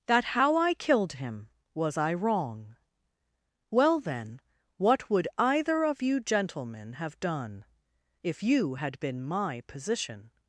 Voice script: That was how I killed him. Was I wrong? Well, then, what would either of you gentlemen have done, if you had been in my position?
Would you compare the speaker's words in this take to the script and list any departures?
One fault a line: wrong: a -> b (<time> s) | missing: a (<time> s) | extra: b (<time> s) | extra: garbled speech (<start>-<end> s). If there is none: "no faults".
missing: was (0.2 s)
missing: in (9.2 s)